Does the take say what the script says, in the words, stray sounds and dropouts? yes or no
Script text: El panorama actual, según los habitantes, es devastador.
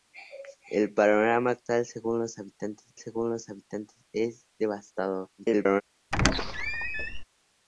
no